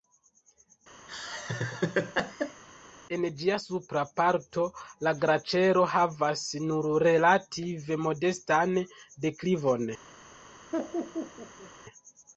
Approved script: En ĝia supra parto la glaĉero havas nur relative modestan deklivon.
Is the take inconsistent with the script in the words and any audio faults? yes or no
yes